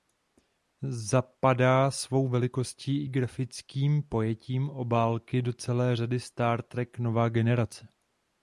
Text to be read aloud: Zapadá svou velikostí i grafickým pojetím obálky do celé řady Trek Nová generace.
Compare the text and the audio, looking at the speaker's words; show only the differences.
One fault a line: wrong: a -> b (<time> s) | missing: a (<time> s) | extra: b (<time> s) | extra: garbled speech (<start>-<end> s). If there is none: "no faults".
extra: Star (6.2 s)